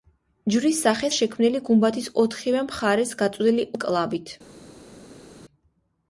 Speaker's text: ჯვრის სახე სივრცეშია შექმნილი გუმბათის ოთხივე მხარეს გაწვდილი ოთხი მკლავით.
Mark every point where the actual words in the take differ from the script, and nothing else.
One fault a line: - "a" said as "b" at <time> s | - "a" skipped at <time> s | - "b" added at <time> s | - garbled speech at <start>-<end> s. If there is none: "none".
- "სივრცეშია" skipped at 1.1 s
- "ოთხი" skipped at 3.7 s